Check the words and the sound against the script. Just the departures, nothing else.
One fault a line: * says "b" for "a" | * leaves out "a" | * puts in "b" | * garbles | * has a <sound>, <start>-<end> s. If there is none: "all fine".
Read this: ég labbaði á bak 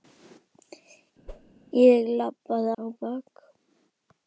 * has a whoosh, 1.3-1.5 s